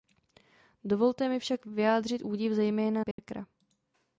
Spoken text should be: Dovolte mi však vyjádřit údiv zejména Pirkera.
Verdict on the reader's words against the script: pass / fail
pass